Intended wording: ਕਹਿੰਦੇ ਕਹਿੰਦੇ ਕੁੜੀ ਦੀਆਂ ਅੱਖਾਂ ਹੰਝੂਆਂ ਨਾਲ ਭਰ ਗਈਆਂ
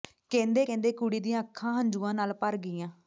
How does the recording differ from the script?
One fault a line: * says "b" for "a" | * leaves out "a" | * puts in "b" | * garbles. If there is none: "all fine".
all fine